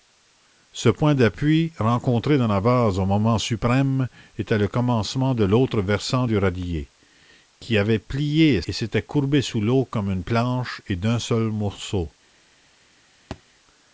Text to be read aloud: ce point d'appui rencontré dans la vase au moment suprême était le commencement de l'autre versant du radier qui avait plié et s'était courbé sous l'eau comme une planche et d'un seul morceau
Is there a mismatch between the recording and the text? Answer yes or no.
no